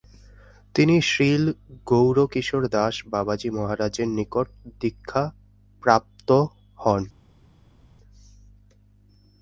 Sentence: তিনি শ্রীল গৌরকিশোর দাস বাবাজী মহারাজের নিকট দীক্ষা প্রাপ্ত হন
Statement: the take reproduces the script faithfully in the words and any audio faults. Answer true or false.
true